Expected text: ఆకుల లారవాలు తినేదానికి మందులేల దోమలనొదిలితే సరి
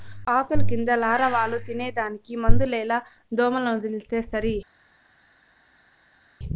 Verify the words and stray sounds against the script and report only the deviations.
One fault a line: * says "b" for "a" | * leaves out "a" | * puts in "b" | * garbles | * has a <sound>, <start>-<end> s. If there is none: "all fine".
* puts in "కింద"